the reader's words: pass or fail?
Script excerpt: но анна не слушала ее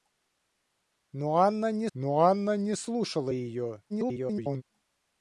fail